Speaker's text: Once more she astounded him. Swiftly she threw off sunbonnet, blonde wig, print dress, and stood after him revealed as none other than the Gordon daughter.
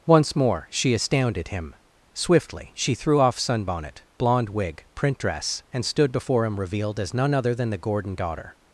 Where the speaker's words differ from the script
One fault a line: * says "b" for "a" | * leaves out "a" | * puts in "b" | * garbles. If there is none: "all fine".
* says "before" for "after"